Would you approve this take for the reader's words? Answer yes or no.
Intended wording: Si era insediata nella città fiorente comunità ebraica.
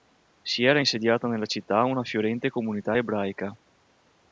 no